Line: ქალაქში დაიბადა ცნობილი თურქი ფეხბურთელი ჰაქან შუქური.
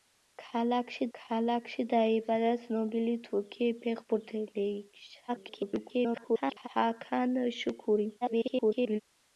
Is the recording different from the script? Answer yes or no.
yes